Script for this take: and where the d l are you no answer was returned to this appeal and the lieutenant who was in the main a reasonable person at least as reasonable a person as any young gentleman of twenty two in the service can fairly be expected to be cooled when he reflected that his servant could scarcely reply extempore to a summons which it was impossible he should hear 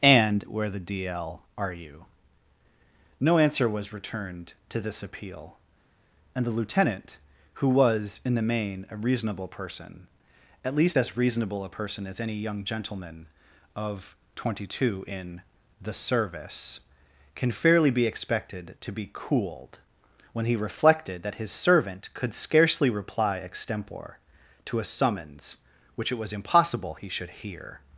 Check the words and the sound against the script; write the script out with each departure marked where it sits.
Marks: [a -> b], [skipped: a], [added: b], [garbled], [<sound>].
and where the d l are you no answer was returned to this appeal and the lieutenant who was in the main a reasonable person at least as reasonable a person as any young gentleman of twenty two in the service can fairly be expected to be cooled when he reflected that his servant could scarcely reply extempore to a summons which it was impossible he should hear